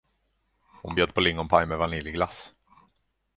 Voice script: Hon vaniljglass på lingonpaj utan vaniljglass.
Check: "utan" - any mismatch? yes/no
yes